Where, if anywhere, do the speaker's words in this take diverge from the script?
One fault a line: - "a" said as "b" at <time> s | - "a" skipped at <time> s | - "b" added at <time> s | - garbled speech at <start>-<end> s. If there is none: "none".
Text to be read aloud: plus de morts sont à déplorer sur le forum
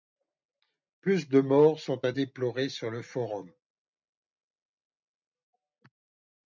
none